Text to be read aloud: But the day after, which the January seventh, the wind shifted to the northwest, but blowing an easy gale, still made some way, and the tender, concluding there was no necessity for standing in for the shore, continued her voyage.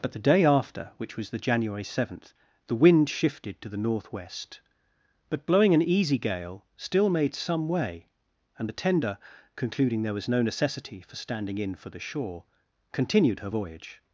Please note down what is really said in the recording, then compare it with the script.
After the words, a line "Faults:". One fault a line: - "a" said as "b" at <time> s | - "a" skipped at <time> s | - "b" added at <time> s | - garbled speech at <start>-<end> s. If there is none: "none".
But the day after, which was the January seventh, the wind shifted to the northwest, but blowing an easy gale, still made some way, and the tender, concluding there was no necessity for standing in for the shore, continued her voyage.
Faults:
- "was" added at 1.1 s